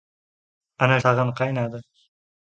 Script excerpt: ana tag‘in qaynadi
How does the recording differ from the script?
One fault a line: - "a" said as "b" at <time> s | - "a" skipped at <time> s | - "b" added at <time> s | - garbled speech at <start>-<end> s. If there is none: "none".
none